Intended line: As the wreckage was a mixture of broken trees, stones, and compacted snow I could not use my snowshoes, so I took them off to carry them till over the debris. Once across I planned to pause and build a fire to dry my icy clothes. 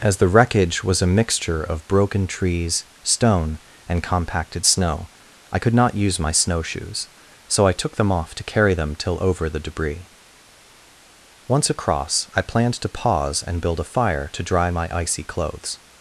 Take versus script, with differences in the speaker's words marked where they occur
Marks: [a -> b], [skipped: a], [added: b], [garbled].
As the wreckage was a mixture of broken trees, [stones, -> stone] and compacted snow I could not use my snowshoes, so I took them off to carry them till over the debris. Once across I planned to pause and build a fire to dry my icy clothes.